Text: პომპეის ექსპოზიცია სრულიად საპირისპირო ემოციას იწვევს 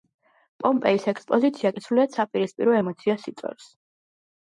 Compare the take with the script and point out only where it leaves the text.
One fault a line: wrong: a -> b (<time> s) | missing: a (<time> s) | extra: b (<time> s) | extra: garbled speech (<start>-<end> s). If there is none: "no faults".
extra: კი (1.7 s)